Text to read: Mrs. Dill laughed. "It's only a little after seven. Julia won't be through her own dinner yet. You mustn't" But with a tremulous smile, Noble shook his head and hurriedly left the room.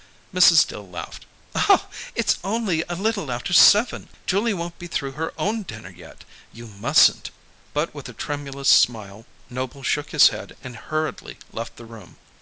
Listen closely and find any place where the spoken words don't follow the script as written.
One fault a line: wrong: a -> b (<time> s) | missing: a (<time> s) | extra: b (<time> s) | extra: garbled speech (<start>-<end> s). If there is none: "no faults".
no faults